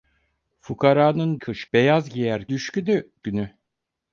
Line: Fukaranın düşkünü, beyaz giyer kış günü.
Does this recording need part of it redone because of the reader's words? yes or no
yes